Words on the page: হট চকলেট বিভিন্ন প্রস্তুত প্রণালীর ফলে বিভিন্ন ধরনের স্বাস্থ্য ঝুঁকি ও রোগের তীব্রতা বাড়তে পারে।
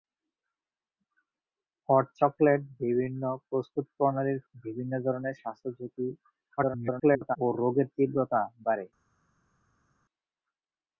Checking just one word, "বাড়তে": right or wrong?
wrong